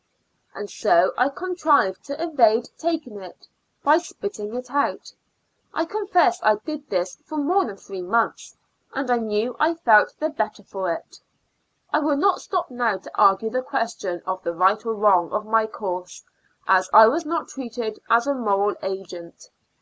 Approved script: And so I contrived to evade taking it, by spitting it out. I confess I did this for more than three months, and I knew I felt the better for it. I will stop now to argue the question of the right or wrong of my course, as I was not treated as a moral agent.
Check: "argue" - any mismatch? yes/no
no